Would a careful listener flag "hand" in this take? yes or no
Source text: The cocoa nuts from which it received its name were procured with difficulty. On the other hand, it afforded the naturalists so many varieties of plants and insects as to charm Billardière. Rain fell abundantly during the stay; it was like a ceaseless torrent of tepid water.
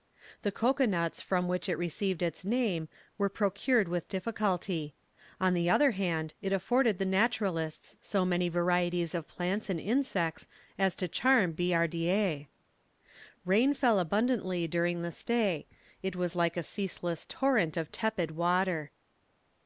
no